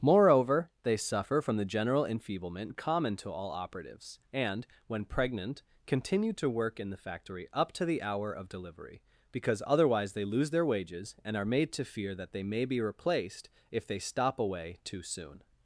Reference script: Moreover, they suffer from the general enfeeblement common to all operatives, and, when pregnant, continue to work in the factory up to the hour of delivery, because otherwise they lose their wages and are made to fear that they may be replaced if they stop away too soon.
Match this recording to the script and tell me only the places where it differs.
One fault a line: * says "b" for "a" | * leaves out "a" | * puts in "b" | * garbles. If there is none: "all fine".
all fine